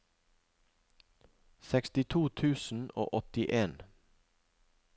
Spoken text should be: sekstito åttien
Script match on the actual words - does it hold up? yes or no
no